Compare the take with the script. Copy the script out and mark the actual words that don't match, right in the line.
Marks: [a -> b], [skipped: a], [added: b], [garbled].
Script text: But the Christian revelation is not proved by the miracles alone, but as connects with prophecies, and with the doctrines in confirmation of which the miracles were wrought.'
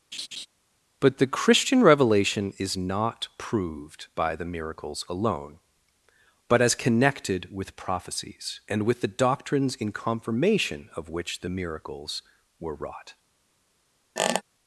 But the Christian revelation is not proved by the miracles alone, but as [connects -> connected] with prophecies, and with the doctrines in confirmation of which the miracles were wrought.'